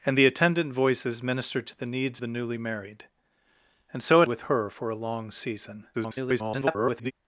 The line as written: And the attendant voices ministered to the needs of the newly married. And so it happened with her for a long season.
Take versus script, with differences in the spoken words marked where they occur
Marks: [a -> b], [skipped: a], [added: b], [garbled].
And the attendant voices ministered to the needs [skipped: of] the newly married. And so it [skipped: happened] with her for a long season. [garbled]